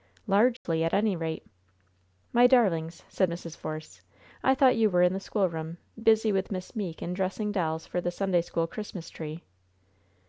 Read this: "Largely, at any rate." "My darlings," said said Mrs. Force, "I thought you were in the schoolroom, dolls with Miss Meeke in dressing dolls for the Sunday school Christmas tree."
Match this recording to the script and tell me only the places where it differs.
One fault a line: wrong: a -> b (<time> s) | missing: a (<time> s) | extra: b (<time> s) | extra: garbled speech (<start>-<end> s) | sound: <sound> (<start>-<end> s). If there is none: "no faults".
sound: dropout (0.6-0.7 s)
missing: said (3.3 s)
wrong: dolls -> busy (6.0 s)